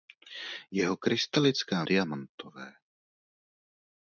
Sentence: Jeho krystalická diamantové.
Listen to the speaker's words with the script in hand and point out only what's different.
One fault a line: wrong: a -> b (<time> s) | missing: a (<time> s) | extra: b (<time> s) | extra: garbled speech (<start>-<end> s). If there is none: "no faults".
no faults